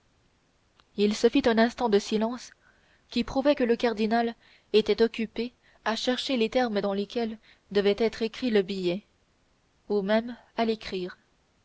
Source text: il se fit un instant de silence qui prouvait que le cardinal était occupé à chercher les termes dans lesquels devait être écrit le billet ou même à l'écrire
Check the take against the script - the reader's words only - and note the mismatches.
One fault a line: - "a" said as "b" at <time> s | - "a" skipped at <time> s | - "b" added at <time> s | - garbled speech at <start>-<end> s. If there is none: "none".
none